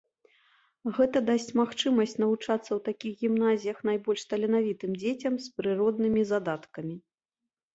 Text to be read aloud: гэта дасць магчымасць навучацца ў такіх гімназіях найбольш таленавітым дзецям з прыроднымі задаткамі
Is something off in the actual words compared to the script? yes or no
no